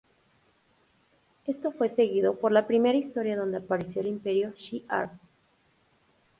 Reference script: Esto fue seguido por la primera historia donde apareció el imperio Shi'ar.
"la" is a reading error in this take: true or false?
false